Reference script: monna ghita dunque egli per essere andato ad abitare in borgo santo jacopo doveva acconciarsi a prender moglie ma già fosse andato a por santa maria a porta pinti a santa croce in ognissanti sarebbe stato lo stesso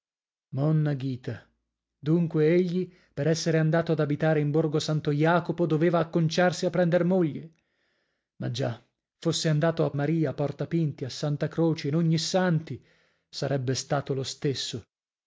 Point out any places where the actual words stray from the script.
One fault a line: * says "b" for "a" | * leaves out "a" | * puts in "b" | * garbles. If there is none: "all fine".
* leaves out "por santa"